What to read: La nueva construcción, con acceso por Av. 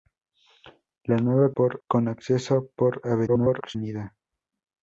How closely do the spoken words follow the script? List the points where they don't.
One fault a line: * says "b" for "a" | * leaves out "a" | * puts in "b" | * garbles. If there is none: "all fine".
* says "por" for "construcción"
* garbles